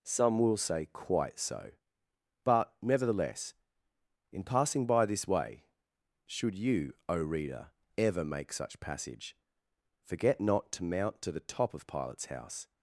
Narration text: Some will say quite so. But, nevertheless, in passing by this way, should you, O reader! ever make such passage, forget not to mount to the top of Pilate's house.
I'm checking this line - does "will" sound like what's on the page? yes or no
yes